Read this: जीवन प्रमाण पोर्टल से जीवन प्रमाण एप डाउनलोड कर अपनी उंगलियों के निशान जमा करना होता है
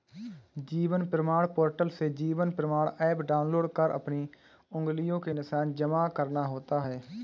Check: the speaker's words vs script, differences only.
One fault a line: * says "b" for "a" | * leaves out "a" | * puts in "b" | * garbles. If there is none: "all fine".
all fine